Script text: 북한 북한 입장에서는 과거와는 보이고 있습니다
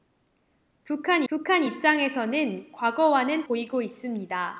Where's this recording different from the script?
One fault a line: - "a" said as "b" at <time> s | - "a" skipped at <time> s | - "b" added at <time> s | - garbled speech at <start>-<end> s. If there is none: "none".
none